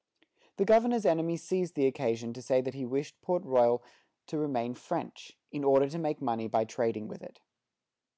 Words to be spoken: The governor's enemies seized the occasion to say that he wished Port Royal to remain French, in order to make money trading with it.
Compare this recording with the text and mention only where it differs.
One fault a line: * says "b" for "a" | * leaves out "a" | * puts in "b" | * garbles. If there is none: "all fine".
* puts in "by"